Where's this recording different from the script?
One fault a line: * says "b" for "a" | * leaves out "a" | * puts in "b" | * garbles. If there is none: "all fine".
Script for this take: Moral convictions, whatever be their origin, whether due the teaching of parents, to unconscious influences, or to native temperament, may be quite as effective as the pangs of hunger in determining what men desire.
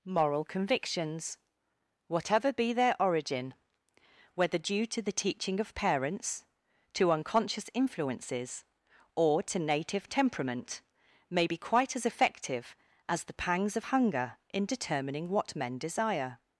* puts in "to"